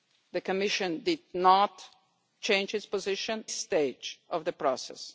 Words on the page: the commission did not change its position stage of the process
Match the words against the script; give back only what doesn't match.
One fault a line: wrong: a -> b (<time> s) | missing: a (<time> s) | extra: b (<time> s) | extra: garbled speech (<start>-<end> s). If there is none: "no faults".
no faults